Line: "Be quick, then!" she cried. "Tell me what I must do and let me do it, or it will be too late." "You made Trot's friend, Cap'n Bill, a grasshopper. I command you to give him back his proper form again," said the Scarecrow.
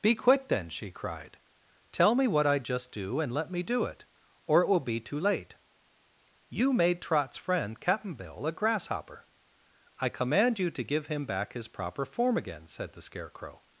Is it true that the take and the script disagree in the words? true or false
true